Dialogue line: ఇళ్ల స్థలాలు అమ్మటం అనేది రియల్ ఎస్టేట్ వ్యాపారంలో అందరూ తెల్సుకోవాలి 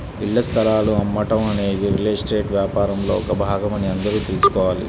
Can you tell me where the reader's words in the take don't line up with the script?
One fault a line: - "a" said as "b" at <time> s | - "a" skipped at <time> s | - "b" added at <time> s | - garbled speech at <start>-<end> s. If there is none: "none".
- "ఒక భాగమని" added at 3.2 s